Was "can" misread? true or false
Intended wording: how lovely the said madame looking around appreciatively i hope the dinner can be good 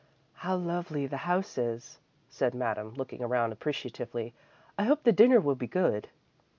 true